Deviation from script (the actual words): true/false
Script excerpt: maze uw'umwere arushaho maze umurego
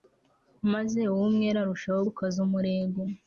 true